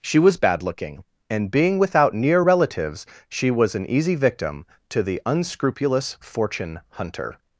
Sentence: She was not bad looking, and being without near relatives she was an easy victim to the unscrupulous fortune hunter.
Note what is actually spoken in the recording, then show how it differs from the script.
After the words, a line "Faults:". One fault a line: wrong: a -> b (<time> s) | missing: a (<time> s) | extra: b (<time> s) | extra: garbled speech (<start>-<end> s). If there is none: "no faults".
She was bad looking, and being without near relatives she was an easy victim to the unscrupulous fortune hunter.
Faults:
missing: not (0.4 s)